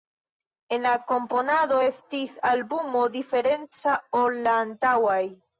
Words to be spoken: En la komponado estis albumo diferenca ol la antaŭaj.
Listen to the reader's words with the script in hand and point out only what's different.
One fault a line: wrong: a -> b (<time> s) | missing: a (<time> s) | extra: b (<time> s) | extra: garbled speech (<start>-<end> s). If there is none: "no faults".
no faults